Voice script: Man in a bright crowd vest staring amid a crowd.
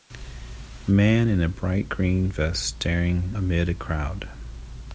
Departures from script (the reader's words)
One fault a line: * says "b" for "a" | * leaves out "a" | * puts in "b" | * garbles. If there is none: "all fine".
* says "green" for "crowd"